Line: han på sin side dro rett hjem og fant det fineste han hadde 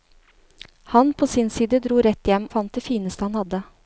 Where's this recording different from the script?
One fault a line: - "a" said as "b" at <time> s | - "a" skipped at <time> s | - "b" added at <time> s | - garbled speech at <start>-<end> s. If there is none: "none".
- "og" skipped at 2.5 s